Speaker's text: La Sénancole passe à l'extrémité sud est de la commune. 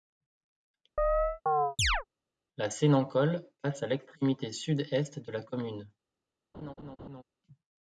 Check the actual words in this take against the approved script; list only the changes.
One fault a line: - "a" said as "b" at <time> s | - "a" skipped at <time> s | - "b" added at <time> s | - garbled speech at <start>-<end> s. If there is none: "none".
none